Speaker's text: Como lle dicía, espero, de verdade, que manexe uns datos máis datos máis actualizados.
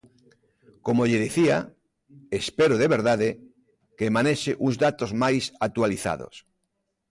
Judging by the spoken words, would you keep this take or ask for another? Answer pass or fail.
fail